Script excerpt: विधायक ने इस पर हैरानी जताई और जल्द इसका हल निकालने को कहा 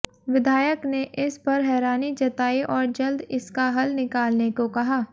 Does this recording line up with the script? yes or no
yes